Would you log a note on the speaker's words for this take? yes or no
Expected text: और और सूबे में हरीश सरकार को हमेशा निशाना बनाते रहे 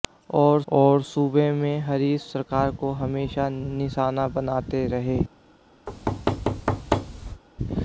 no